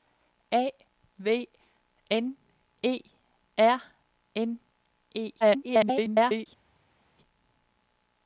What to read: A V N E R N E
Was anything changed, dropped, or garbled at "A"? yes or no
no